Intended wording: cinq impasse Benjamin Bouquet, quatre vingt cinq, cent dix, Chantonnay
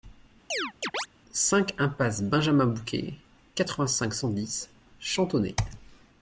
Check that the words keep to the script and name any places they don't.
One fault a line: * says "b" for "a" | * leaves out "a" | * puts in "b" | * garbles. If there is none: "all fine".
all fine